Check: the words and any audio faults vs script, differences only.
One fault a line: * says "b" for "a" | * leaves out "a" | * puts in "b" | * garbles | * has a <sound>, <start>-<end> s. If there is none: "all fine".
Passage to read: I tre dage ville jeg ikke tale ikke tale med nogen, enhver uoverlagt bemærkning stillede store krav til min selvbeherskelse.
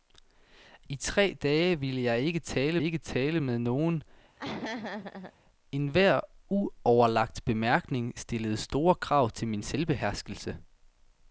* has a laugh, 4.4-5.3 s